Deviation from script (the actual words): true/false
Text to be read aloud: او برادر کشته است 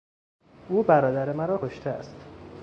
true